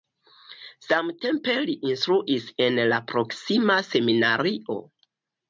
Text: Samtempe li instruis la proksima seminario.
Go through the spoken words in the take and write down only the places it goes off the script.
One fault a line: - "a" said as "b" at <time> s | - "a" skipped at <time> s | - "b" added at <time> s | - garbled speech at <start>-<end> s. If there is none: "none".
- "en" added at 2.7 s